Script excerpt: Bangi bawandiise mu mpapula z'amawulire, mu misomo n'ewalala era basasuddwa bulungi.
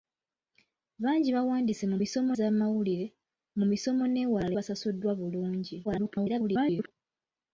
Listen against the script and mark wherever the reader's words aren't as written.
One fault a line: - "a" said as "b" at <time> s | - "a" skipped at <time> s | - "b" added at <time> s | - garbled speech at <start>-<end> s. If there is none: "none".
- "mpapula" said as "misomo" at 2.0 s
- "era" skipped at 4.5 s
- garbled speech at 5.8-6.9 s